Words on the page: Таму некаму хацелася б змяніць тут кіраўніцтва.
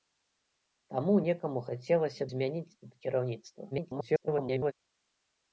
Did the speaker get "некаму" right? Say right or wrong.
right